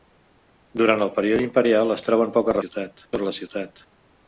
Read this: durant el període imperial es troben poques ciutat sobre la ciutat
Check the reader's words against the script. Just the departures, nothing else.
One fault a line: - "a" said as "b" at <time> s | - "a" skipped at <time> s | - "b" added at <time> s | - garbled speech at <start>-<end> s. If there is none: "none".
none